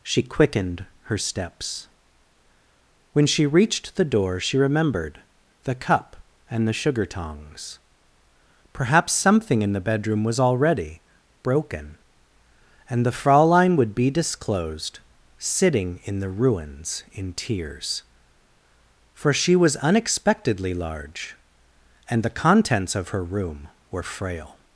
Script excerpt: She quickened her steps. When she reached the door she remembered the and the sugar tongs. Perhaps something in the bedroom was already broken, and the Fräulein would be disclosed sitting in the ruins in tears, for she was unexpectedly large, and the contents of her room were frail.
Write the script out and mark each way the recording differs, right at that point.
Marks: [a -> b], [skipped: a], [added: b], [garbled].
She quickened her steps. When she reached the door she remembered the [added: cup] and the sugar tongs. Perhaps something in the bedroom was already broken, and the Fräulein would be disclosed sitting in the ruins in tears, for she was unexpectedly large, and the contents of her room were frail.